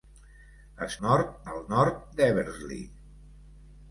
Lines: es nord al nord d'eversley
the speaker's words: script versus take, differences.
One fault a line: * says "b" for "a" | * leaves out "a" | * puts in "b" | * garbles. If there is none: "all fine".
all fine